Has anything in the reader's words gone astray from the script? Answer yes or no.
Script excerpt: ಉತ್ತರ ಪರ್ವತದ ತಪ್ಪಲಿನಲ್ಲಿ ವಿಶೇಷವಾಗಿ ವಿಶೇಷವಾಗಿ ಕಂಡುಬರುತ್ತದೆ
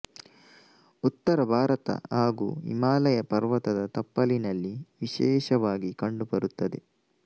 yes